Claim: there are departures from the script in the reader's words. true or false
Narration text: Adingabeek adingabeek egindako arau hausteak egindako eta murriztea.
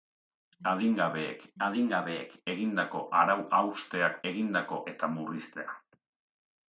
false